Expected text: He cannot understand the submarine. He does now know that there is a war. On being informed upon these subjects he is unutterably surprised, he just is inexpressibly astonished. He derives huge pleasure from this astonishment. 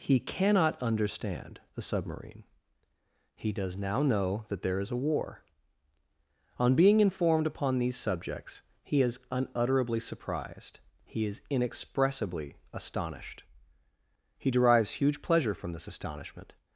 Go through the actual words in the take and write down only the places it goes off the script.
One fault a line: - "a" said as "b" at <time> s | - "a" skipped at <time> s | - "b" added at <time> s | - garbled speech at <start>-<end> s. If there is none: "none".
- "just" skipped at 11.3 s